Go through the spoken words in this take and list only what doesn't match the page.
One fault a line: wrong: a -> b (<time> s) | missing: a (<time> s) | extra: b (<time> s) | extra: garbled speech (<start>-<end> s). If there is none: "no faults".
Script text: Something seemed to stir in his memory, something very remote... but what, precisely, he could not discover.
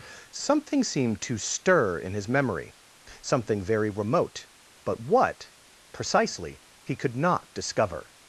no faults